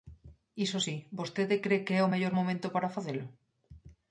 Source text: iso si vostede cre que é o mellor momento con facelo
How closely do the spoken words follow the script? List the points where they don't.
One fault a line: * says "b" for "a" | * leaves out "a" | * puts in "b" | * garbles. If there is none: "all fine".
* says "para" for "con"